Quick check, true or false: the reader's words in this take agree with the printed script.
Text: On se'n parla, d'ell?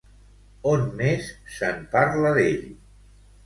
false